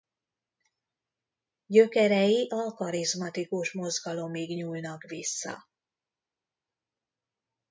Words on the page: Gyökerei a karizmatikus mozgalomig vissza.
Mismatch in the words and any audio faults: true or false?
true